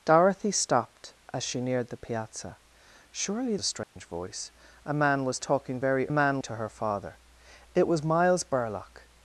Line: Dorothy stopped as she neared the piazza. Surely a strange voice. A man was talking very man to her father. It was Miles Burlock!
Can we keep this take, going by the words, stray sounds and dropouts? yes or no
no